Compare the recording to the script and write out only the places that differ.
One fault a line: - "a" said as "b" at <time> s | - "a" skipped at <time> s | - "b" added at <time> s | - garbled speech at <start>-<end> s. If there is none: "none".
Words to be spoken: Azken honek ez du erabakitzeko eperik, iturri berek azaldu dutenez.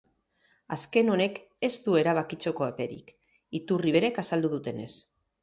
none